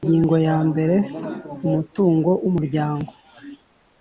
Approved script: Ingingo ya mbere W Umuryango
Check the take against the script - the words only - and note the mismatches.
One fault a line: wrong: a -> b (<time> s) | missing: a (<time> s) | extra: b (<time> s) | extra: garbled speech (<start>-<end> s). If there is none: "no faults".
extra: Umutungo (1.7 s)